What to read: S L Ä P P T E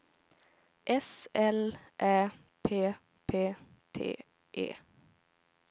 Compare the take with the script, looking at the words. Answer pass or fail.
pass